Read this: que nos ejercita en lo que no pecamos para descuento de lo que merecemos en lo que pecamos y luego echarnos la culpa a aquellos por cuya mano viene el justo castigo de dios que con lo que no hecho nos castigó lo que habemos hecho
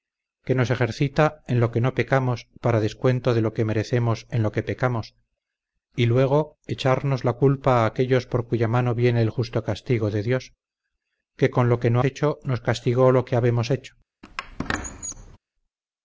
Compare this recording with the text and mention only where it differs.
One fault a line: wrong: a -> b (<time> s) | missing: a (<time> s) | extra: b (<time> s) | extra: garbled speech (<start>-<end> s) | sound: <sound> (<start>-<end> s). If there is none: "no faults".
sound: squeak (14.2-15.4 s)